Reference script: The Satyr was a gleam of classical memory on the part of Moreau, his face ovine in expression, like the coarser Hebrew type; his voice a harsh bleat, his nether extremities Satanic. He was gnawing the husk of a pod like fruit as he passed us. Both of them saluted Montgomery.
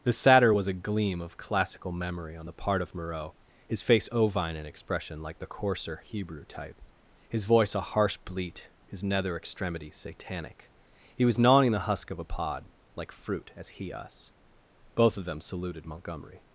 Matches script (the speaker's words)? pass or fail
fail